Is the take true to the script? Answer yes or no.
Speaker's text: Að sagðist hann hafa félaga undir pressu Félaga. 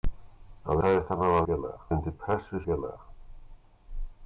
yes